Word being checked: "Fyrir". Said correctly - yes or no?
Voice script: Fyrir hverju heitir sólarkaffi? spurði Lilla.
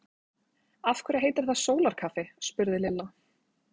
no